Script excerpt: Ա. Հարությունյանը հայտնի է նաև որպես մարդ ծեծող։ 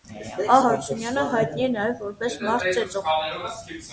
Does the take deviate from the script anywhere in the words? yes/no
no